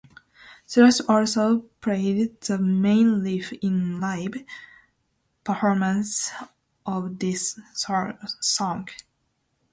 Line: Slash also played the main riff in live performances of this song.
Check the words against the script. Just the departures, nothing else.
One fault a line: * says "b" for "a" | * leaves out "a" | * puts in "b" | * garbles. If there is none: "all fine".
all fine